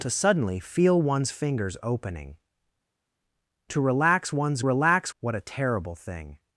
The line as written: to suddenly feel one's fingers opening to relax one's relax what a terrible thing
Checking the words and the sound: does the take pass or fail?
pass